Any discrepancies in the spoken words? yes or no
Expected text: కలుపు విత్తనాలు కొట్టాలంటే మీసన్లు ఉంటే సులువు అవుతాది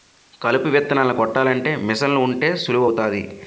no